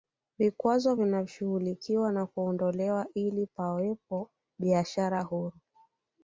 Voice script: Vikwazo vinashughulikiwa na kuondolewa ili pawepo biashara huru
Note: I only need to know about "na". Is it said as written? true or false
true